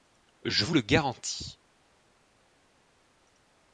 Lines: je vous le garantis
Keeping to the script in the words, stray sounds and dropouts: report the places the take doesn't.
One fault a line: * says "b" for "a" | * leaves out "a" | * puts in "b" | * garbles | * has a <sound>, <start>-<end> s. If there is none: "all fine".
all fine